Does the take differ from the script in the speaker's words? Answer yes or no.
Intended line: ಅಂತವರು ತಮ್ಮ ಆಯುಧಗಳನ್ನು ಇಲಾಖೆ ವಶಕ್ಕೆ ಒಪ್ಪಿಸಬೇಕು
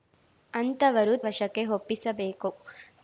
yes